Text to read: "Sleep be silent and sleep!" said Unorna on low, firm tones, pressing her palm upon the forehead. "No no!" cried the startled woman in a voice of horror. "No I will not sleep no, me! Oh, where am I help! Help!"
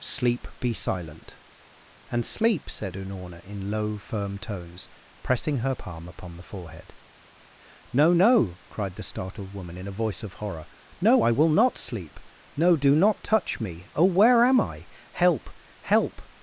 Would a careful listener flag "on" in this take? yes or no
yes